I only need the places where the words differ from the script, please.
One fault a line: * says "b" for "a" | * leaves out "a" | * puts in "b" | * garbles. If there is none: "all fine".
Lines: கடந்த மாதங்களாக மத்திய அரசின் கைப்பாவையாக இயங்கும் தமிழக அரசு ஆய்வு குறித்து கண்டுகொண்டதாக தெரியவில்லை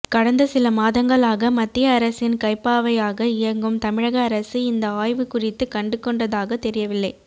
* puts in "சில"
* puts in "இந்த"